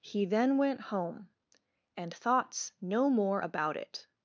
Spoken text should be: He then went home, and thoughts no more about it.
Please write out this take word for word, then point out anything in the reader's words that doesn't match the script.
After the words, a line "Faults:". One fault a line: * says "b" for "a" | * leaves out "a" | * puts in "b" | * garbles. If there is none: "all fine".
He then went home, and thoughts no more about it.
Faults:
all fine